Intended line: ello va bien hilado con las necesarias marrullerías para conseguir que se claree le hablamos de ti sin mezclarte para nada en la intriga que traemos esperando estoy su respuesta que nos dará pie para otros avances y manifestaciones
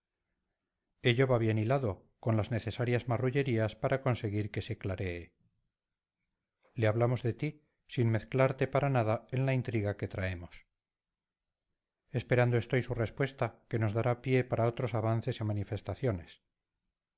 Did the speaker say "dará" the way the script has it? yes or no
yes